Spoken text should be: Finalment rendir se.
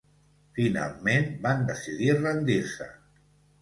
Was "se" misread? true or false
false